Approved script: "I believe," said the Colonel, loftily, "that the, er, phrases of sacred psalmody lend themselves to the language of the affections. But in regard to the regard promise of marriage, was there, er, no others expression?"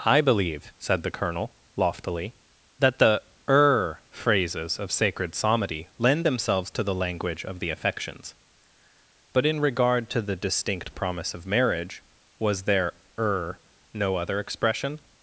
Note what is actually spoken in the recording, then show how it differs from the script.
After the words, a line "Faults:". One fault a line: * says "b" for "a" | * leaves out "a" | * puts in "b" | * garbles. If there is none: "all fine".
"I believe," said the Colonel, loftily, "that the, er, phrases of sacred psalmody lend themselves to the language of the affections. But in regard to the distinct promise of marriage, was there, er, no other expression?"
Faults:
* says "distinct" for "regard"
* says "other" for "others"